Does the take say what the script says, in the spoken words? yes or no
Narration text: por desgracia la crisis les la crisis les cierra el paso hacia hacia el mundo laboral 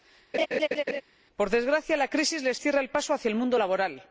no